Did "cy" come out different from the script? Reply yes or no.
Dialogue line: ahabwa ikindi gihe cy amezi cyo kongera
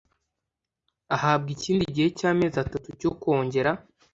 no